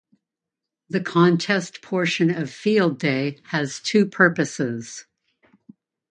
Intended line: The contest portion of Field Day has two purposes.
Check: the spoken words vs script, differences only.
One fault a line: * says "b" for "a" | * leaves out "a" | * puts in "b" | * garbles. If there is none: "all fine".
all fine